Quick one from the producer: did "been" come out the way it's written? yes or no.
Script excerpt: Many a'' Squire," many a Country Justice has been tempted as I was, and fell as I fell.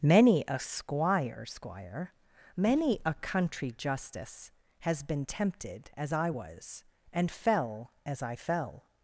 yes